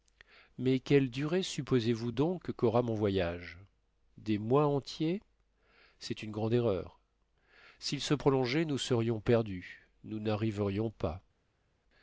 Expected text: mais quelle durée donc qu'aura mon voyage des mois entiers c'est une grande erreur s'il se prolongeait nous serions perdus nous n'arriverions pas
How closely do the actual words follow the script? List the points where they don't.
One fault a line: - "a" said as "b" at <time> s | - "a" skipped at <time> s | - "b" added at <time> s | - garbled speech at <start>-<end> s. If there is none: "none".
- "supposez vous" added at 1.4 s